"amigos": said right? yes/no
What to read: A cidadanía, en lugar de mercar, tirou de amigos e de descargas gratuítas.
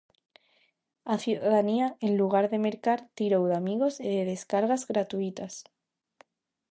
yes